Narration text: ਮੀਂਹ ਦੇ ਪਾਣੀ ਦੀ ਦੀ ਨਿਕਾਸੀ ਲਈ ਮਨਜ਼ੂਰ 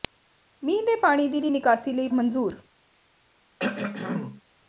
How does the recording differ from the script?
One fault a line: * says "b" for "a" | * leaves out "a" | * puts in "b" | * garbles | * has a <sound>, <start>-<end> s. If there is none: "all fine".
* has a throat clearing, 3.6-4.4 s